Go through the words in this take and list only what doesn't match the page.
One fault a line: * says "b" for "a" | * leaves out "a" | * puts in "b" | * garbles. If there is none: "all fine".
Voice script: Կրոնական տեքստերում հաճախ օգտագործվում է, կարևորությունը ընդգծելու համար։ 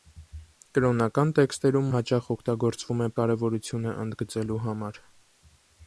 all fine